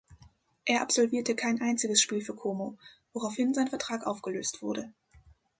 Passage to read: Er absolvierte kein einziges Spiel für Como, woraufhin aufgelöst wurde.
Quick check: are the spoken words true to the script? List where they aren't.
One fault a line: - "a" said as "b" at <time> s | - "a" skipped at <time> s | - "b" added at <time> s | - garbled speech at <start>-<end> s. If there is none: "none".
- "sein Vertrag" added at 3.5 s